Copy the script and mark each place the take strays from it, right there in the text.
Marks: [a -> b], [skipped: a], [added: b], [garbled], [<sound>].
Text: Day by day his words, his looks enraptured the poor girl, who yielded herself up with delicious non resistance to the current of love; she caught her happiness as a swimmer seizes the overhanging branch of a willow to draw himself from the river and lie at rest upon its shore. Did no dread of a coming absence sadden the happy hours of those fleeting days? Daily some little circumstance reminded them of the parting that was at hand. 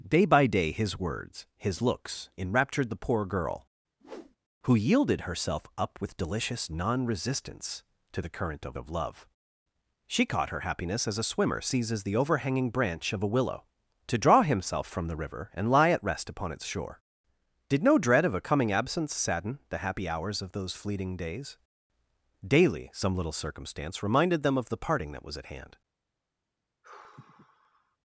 Day by day his words, his looks enraptured the poor girl, [whoosh] who yielded herself up with delicious non resistance to the current of [added: of] love; she caught her happiness as a swimmer seizes the overhanging branch of a willow to draw himself from the river and lie at rest upon its shore. Did no dread of a coming absence sadden the happy hours of those fleeting days? Daily some little circumstance reminded them of the parting that was at hand. [sigh]